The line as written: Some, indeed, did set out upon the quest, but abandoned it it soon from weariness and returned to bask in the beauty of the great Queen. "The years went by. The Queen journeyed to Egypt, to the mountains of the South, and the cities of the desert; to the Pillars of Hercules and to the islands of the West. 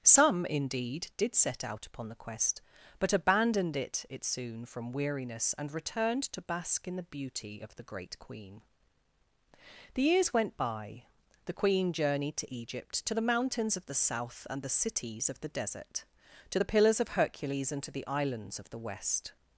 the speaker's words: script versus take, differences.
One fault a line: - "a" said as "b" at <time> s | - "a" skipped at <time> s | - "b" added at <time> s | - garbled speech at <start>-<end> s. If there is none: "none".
none